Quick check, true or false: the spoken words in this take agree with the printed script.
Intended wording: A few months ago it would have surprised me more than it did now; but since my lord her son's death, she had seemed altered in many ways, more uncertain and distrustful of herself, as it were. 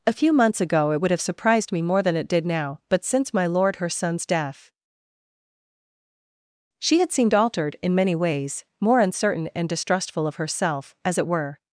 true